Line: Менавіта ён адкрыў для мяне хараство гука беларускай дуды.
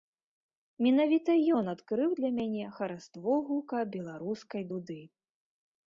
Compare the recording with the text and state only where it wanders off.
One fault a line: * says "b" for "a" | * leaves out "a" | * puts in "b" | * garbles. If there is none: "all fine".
all fine